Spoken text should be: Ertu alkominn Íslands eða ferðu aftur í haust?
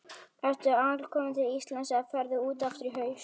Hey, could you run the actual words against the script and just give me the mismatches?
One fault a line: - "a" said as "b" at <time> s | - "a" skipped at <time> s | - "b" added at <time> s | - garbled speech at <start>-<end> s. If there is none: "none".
- "til" added at 1.4 s
- "út" added at 2.5 s